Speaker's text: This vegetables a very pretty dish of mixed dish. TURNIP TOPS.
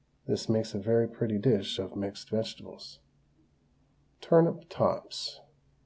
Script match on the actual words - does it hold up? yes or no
no